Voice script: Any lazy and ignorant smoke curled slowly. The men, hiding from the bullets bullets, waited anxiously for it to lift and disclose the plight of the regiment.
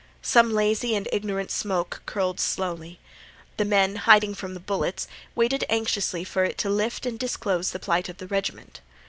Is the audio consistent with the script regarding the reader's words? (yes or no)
no